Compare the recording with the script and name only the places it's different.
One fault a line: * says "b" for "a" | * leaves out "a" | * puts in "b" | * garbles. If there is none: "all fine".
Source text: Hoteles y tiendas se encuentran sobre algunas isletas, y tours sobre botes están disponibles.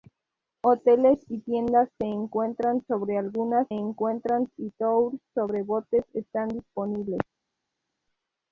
* says "encuentran" for "isletas"